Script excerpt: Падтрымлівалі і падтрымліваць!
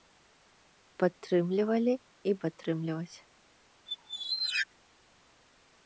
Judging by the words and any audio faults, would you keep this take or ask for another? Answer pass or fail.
fail